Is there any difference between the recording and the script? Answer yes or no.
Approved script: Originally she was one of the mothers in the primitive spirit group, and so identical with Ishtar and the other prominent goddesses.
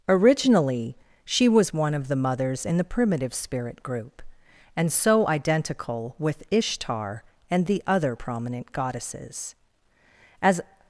yes